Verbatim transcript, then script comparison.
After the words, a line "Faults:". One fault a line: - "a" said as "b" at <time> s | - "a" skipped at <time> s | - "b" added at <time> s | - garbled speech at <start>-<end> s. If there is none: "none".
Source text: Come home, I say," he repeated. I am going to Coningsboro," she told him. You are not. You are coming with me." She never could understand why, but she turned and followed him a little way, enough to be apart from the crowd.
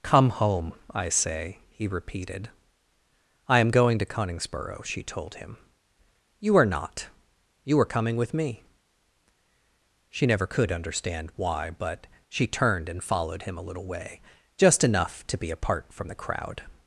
Come home, I say," he repeated. I am going to Coningsboro," she told him. You are not. You are coming with me." She never could understand why, but she turned and followed him a little way, just enough to be apart from the crowd.
Faults:
- "just" added at 14.6 s